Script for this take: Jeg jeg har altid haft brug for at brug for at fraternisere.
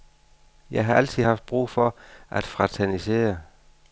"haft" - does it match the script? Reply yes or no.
yes